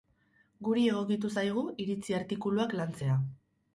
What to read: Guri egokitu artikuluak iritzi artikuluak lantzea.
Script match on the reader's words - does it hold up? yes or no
no